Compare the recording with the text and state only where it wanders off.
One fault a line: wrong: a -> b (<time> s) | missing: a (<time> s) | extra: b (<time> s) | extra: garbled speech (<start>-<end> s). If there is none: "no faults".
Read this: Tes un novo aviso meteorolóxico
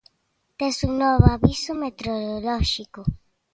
no faults